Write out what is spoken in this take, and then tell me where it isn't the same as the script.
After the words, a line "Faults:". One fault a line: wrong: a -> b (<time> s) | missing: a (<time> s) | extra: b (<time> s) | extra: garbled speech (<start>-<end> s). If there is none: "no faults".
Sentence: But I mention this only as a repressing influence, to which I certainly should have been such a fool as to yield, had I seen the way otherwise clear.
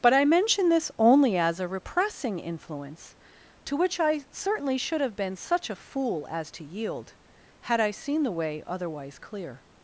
But I mention this only as a repressing influence, to which I certainly should have been such a fool as to yield, had I seen the way otherwise clear.
Faults:
no faults